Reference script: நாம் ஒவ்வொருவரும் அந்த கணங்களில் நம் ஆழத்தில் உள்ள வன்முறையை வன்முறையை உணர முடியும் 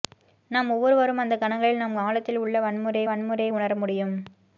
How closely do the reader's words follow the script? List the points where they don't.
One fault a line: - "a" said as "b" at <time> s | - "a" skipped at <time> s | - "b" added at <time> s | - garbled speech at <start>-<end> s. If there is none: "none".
none